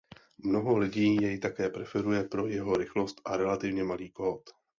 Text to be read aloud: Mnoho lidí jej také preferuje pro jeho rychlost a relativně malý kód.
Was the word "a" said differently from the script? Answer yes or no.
no